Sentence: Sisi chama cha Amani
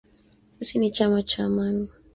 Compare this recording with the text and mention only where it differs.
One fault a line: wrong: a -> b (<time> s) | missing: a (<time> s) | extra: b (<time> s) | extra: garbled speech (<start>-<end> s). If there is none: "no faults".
extra: ni (0.8 s)